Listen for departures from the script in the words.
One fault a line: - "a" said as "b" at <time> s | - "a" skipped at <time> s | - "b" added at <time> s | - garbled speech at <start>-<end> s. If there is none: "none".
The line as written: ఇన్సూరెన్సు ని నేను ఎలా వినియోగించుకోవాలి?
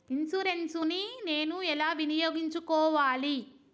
none